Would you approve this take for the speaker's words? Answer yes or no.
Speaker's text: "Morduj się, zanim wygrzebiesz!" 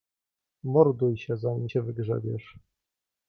no